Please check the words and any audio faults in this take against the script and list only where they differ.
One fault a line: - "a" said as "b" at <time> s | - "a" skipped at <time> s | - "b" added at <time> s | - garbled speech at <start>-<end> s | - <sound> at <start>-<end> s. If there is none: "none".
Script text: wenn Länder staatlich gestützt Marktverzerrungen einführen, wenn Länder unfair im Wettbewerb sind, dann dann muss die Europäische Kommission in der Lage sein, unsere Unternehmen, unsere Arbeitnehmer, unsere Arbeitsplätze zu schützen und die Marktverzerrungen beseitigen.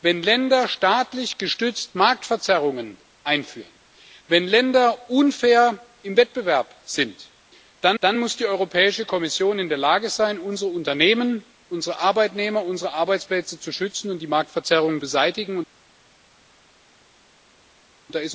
none